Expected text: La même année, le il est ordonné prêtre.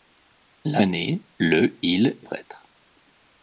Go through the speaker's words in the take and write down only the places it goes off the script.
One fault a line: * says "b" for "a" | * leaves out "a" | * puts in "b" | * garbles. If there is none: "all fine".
* leaves out "même"
* leaves out "est ordonné"